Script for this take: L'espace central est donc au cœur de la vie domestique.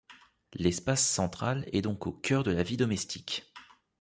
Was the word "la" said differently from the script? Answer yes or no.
no